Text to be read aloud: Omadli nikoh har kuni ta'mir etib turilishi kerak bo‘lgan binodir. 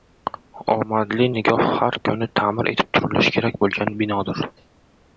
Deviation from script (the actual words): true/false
false